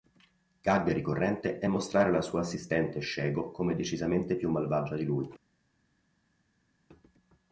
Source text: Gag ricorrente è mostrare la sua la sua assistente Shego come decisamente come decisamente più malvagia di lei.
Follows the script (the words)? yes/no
no